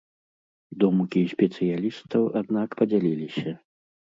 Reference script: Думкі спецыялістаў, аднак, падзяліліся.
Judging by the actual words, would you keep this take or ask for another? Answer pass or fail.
pass